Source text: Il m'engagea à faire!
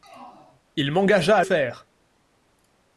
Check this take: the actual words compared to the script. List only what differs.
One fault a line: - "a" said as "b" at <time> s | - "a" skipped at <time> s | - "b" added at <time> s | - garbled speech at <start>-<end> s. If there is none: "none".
none